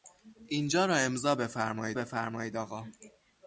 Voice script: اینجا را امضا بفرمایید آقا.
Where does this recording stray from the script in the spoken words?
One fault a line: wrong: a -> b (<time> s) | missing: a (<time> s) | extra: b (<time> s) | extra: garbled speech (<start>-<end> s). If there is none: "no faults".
extra: بفرمایید (1.9 s)